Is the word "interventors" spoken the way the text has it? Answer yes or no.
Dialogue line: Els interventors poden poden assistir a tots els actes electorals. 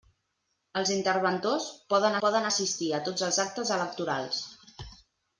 yes